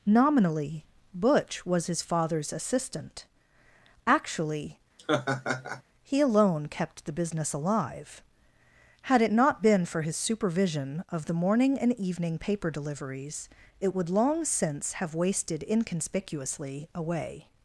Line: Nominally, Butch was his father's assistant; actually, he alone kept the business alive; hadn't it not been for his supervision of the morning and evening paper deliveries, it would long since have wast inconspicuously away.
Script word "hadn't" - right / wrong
wrong